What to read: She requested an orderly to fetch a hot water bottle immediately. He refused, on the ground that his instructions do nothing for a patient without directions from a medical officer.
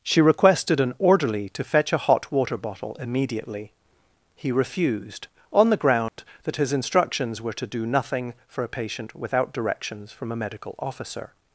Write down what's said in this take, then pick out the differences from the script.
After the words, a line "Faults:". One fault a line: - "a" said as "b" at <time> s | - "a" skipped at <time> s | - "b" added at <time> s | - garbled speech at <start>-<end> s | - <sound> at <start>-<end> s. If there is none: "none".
She requested an orderly to fetch a hot water bottle immediately. He refused, on the ground that his instructions were to do nothing for a patient without directions from a medical officer.
Faults:
- dropout at 6.1-6.2 s
- "were to" added at 7.4 s